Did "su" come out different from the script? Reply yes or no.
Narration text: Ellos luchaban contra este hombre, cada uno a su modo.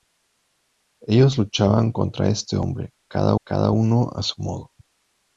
no